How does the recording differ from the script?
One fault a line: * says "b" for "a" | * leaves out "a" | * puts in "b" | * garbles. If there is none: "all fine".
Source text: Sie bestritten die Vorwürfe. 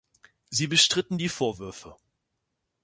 all fine